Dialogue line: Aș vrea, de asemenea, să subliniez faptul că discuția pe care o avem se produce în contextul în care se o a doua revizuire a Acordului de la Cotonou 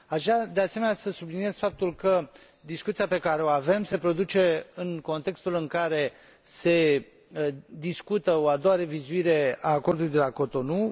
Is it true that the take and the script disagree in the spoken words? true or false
true